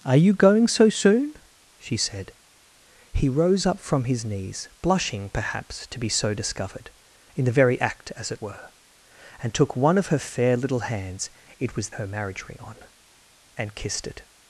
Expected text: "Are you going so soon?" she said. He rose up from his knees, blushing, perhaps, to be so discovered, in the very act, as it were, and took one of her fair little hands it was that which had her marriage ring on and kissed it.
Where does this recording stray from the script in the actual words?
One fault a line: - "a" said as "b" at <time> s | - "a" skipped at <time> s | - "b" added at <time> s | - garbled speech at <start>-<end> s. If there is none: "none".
- "that which had" skipped at 11.9 s